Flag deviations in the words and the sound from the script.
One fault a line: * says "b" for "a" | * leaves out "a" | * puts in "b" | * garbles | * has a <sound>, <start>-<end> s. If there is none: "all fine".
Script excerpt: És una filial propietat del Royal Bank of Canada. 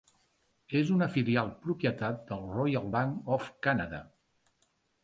all fine